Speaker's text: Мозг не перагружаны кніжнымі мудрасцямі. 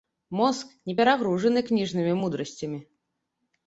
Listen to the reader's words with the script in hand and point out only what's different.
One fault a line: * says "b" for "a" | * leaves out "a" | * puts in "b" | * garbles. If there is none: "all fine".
all fine